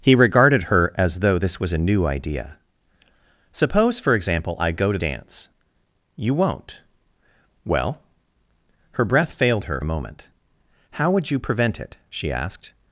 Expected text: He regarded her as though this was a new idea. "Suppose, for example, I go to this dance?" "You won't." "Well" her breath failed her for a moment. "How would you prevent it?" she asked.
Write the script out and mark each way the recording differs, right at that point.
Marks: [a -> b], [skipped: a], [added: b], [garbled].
He regarded her as though this was a new idea. "Suppose, for example, I go to [skipped: this] dance?" "You won't." "Well" her breath failed her [skipped: for] a moment. "How would you prevent it?" she asked.